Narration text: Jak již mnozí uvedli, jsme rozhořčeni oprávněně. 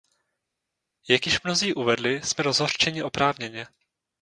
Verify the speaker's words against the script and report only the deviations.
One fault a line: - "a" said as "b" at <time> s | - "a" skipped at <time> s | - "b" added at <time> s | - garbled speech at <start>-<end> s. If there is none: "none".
none